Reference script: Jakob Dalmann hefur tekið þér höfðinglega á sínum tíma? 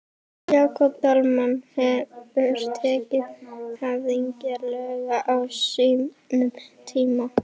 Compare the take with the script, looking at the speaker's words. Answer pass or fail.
fail